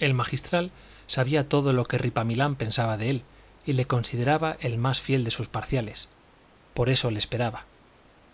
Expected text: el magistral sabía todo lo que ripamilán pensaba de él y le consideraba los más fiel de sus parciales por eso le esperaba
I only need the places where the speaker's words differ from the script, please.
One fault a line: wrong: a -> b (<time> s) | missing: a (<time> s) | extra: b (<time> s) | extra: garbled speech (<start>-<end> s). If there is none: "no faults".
wrong: los -> el (4.6 s)